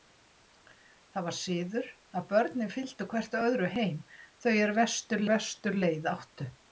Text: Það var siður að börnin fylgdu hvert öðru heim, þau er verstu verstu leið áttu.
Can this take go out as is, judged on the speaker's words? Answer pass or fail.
pass